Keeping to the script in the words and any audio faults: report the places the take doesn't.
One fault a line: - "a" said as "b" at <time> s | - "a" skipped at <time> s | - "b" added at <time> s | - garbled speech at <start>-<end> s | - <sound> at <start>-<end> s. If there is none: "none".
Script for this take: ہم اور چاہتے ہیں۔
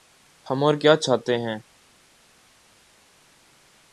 - "کیا" added at 0.8 s